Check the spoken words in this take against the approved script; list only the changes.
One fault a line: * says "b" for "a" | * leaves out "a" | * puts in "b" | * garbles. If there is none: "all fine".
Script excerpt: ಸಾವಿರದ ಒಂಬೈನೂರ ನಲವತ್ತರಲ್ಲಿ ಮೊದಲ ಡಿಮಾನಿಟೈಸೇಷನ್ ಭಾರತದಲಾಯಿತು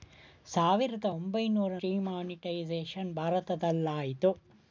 * leaves out "ನಲವತ್ತರಲ್ಲಿ ಮೊದಲ"